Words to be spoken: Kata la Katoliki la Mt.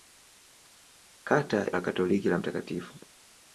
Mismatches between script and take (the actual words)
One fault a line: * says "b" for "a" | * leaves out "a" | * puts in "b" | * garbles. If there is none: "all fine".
all fine